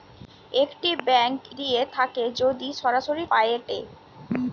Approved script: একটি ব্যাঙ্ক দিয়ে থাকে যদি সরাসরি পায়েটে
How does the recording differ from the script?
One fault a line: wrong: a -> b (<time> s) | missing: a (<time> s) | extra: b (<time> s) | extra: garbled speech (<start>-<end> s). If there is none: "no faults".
no faults